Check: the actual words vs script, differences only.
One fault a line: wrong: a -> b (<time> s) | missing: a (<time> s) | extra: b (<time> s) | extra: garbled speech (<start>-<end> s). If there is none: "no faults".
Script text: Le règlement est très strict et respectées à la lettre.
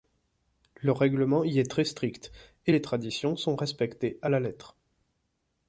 extra: y (1.4 s)
extra: les traditions sont (2.7 s)